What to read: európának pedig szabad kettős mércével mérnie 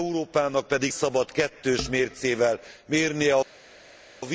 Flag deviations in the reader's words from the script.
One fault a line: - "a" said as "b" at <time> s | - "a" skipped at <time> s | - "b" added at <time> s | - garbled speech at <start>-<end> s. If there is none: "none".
none